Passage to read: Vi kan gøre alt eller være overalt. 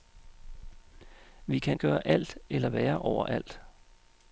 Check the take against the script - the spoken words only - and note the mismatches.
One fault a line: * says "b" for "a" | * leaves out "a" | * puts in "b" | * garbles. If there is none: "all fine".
all fine